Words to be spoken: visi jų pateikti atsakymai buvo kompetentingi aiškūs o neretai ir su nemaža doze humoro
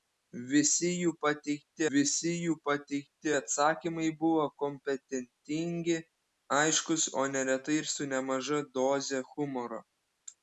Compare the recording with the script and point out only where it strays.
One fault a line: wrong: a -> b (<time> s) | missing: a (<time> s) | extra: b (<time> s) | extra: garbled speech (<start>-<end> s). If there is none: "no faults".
extra: visi jų pateikti (1.9 s)